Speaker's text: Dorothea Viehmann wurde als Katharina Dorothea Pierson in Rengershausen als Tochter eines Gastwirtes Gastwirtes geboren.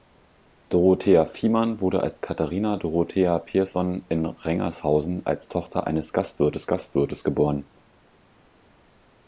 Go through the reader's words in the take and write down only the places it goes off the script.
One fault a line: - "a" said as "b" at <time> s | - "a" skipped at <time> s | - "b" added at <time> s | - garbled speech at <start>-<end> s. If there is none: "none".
none